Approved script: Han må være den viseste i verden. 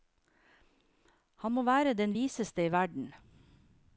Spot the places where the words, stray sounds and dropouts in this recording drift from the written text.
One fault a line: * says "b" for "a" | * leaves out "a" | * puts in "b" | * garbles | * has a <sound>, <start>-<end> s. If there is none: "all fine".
all fine